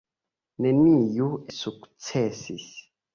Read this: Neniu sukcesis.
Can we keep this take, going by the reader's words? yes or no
yes